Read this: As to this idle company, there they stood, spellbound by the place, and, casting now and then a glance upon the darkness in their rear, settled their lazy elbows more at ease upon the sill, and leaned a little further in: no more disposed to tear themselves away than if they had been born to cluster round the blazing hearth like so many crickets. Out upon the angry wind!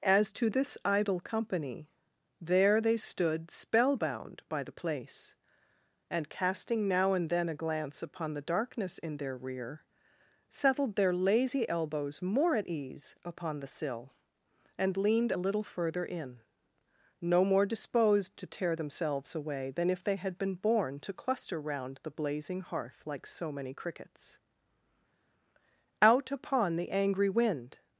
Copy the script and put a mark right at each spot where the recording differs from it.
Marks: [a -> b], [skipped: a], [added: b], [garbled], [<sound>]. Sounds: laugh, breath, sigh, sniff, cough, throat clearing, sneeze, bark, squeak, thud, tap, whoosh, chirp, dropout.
As to this idle company, there they stood, spellbound by the place, and, casting now and then a glance upon the darkness in their rear, settled their lazy elbows more at ease upon the sill, and leaned a little further in: no more disposed to tear themselves away than if they had been born to cluster round the blazing hearth like so many crickets. Out upon the angry wind!